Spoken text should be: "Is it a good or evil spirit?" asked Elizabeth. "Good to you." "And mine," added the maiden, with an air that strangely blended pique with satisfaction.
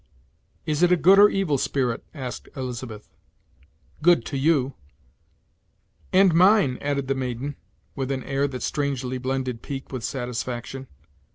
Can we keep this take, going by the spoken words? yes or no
yes